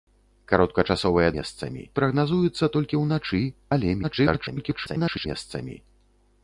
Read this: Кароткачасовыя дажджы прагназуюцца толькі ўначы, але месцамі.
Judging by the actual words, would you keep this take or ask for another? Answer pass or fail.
fail